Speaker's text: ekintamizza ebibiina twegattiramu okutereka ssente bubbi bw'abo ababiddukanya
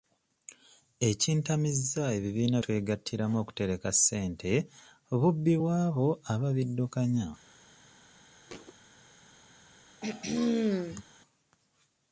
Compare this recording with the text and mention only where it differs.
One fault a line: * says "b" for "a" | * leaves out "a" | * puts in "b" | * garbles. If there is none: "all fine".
all fine